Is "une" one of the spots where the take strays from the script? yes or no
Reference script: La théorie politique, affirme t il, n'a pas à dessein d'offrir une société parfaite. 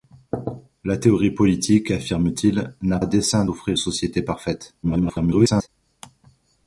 yes